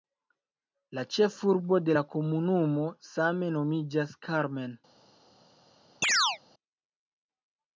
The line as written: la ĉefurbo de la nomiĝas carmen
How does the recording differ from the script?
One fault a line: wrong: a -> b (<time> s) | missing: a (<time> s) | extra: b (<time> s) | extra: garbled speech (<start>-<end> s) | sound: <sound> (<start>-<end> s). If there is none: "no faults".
extra: komunumo same (2.1 s)
sound: chirp (6.0-6.4 s)